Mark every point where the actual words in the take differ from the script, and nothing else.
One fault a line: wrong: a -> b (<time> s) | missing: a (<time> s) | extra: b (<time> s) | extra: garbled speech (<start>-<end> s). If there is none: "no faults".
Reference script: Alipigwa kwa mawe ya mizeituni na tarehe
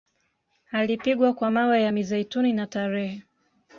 no faults